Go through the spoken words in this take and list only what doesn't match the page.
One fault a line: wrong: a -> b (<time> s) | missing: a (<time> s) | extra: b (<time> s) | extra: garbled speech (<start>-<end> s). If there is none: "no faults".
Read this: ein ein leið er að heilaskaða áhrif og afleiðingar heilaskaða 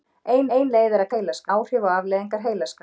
no faults